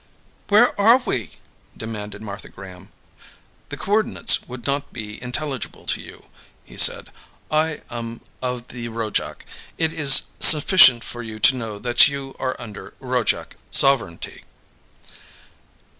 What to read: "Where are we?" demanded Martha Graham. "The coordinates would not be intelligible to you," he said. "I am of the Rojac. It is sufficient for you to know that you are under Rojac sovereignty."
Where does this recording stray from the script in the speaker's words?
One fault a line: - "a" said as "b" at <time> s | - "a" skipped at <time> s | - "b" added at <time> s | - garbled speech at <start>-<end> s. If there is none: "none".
none